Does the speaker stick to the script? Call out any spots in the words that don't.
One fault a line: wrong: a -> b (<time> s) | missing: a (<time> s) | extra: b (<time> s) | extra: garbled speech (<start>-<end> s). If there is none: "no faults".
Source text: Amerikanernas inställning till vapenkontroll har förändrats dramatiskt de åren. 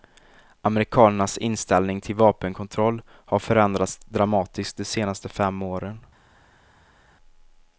extra: senaste fem (4.8 s)